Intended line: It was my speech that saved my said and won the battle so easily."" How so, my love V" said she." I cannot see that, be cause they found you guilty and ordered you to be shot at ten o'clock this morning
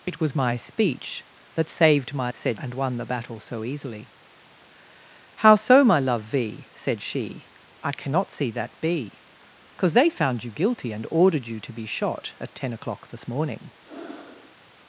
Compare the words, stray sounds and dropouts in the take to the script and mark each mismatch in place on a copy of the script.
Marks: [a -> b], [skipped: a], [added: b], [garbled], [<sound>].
It was my speech that saved my said and won the battle so easily."" How so, my love V" said she." I cannot see that, be cause they found you guilty and ordered you to be shot at ten o'clock this morning [breath]